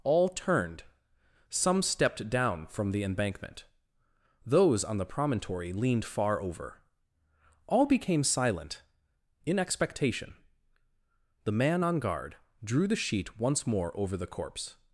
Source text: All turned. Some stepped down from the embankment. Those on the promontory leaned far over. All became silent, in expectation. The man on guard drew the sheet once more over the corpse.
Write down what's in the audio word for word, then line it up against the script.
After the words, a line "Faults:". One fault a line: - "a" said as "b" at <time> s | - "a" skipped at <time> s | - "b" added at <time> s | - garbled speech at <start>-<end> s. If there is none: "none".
All turned. Some stepped down from the embankment. Those on the promontory leaned far over. All became silent, in expectation. The man on guard drew the sheet once more over the corpse.
Faults:
none